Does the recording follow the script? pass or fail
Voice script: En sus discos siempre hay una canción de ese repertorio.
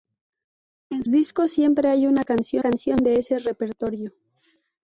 fail